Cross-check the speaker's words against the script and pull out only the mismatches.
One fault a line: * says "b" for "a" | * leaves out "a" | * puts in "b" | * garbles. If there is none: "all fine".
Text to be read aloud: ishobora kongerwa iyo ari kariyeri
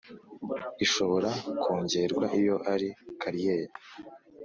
all fine